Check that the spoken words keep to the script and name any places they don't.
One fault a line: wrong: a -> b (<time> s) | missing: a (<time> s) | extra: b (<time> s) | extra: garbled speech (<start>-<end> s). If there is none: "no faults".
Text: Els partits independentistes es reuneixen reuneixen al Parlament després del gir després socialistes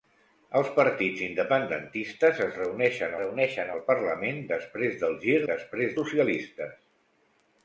no faults